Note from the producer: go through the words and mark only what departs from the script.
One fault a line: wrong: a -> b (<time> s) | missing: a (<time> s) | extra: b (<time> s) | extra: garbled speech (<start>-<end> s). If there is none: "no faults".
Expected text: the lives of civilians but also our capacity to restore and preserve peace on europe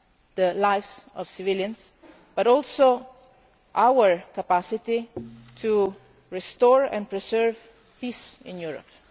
wrong: on -> in (8.4 s)